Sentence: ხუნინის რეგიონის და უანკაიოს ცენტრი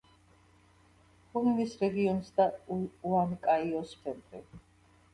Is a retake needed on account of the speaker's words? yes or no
no